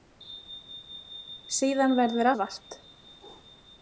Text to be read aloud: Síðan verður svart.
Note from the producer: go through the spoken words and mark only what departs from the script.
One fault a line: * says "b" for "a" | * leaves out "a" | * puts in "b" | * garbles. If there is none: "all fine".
all fine